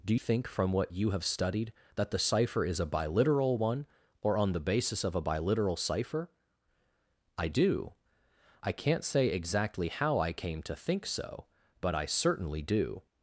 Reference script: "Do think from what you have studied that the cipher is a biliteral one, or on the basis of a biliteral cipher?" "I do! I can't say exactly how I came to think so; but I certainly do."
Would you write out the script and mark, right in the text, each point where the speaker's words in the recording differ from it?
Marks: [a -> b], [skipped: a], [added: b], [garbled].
"Do think from what you have studied that the cipher is a biliteral one, or on the basis of a biliteral cipher?" "I do! I can't say exactly how I came to think so; but I certainly do."